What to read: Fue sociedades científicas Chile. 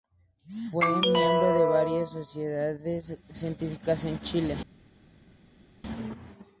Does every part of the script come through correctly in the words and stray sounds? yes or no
no